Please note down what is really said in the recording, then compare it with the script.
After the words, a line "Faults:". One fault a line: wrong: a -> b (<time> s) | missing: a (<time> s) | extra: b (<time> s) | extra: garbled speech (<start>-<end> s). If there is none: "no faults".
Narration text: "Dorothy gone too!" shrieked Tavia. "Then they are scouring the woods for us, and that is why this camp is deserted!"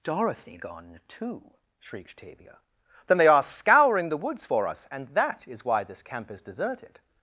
"Dorothy gone too!" shrieked Tavia. "Then they are scouring the woods for us, and that is why this camp is deserted!"
Faults:
no faults